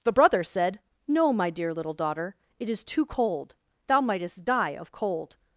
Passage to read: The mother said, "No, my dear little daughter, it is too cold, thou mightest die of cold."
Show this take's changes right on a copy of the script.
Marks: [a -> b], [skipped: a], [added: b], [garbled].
The [mother -> brother] said, "No, my dear little daughter, it is too cold, thou mightest die of cold."